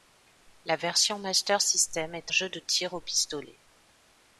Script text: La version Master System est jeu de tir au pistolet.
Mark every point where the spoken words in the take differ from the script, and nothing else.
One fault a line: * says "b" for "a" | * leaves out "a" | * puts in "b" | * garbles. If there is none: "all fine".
all fine